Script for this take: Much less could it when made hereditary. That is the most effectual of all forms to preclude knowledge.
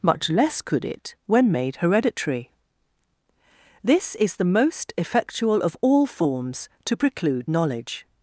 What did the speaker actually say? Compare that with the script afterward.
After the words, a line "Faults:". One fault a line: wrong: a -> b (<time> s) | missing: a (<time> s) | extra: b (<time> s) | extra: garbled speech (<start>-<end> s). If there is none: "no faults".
Much less could it when made hereditary. This is the most effectual of all forms to preclude knowledge.
Faults:
wrong: That -> This (3.8 s)